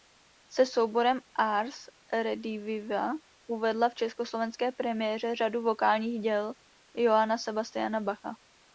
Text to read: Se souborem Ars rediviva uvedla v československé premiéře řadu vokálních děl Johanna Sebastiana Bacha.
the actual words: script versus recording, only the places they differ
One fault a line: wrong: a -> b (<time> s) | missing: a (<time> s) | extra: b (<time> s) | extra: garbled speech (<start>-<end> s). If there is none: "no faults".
no faults